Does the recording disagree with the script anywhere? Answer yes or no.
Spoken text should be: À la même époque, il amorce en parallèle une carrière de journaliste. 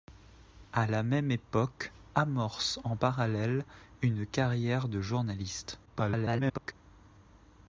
yes